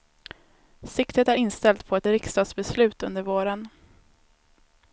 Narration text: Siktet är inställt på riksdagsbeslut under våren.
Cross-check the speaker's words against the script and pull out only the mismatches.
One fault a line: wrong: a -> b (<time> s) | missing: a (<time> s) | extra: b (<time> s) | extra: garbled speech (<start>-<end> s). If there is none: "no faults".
extra: ett (2.0 s)